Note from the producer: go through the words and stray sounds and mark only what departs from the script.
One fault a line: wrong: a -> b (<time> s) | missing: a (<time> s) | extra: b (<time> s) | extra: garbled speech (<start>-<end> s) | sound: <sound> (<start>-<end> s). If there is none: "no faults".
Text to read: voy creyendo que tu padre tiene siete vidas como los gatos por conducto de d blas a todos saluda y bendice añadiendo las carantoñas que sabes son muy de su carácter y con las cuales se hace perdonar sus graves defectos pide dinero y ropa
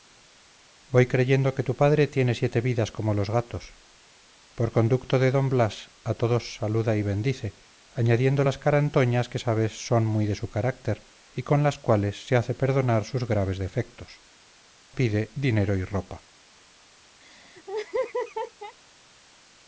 sound: laugh (17.2-18.7 s)